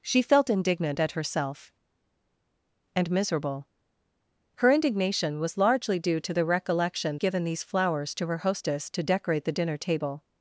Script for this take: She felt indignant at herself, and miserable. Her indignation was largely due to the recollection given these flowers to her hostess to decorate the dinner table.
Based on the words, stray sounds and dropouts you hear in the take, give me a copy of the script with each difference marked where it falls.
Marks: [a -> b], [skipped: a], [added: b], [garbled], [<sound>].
She felt indignant at herself, and miserable. Her indignation was largely due to the recollection given these flowers to her hostess to decorate the dinner table.